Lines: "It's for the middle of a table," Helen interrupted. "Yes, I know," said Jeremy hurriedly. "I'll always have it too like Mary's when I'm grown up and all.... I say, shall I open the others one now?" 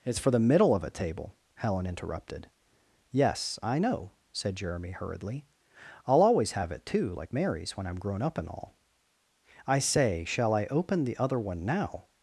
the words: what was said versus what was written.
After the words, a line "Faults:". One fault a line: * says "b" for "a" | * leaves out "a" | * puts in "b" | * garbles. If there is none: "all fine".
"It's for the middle of a table," Helen interrupted. "Yes, I know," said Jeremy hurriedly. "I'll always have it too like Mary's when I'm grown up and all.... I say, shall I open the other one now?"
Faults:
* says "other" for "others"